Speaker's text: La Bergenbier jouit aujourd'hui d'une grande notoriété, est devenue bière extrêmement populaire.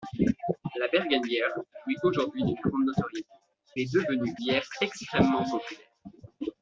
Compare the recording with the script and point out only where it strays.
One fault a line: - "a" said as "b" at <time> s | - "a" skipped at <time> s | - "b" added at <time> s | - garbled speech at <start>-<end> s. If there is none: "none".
none